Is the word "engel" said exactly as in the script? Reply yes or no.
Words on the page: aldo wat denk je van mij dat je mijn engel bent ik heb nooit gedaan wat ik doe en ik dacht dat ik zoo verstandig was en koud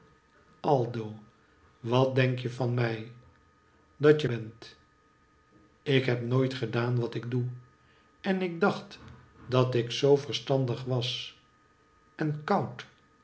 no